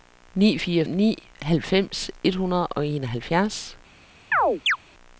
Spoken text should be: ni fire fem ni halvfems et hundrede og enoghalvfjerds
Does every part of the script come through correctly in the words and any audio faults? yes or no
no